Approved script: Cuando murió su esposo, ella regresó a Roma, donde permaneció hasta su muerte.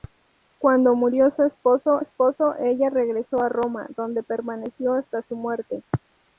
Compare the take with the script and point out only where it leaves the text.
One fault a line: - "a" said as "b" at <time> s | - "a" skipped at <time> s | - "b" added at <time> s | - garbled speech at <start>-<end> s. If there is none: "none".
- "esposo" added at 2.0 s